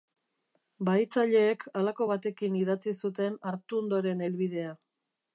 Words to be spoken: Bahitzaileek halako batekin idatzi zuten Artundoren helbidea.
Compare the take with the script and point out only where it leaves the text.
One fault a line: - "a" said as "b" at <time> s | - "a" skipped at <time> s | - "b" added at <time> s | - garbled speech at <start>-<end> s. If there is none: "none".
none